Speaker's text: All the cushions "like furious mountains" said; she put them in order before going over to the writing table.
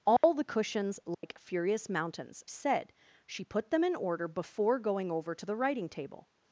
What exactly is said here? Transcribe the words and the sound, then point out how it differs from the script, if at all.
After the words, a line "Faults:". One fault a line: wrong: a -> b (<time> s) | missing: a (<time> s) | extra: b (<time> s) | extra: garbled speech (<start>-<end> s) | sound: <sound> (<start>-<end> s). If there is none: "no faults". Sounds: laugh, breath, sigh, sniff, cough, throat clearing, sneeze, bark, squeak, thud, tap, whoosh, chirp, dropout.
All the cushions "like furious mountains" said; she put them in order before going over to the writing table.
Faults:
sound: dropout (0.2-0.2 s)
sound: dropout (1.1-1.2 s)